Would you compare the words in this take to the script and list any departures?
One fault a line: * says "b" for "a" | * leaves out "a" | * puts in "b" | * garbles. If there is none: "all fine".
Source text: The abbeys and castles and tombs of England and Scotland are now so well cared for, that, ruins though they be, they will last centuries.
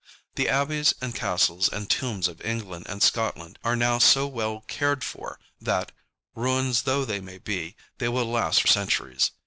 all fine